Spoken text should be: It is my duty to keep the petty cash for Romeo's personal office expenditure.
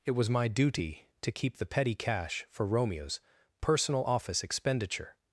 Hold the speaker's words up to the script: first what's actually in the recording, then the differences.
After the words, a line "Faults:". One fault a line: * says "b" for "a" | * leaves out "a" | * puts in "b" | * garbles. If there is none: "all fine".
It was my duty to keep the petty cash for Romeo's personal office expenditure.
Faults:
* says "was" for "is"